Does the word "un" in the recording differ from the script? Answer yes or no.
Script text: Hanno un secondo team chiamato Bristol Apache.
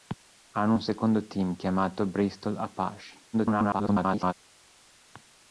no